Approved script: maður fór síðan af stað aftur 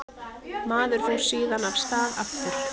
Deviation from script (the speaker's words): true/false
false